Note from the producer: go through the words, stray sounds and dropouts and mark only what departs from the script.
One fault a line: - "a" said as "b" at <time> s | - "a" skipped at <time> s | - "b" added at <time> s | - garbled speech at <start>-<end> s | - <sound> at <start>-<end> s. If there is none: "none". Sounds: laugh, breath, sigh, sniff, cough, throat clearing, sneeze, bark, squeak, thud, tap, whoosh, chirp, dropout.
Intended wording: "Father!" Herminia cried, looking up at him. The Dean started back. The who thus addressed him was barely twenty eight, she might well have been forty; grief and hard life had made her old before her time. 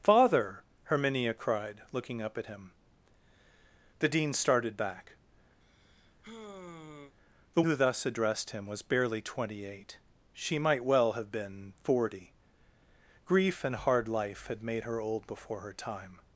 - sigh at 5.6-7.2 s